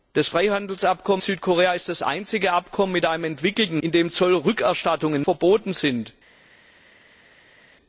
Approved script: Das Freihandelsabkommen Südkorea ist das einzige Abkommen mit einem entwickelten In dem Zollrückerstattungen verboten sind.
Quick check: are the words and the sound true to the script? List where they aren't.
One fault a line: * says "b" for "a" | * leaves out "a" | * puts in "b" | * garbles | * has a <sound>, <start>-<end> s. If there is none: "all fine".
all fine